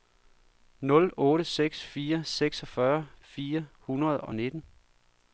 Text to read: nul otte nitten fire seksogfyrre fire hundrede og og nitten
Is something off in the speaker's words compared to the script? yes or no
yes